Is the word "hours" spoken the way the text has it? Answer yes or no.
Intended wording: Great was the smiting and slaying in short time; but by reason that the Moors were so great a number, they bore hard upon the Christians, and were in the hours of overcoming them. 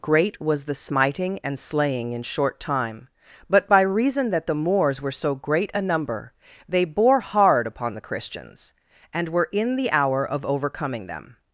no